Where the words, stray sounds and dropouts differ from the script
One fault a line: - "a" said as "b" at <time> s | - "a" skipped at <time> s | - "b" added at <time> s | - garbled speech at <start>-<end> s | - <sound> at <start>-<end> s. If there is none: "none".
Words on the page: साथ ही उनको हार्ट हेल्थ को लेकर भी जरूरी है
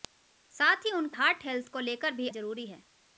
none